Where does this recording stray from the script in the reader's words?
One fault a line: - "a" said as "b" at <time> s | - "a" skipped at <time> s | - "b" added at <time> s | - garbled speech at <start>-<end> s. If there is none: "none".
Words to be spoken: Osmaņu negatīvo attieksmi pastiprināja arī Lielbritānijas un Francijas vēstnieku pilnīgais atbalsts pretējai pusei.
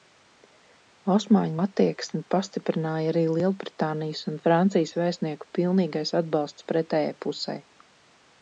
- "negatīvo" skipped at 1.6 s